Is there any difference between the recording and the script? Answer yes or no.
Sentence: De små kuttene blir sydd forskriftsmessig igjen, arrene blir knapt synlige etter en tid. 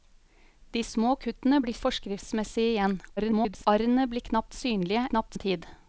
yes